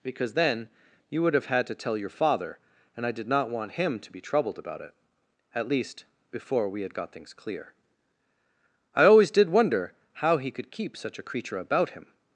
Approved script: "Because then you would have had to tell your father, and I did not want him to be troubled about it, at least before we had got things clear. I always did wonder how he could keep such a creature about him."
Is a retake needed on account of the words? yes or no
no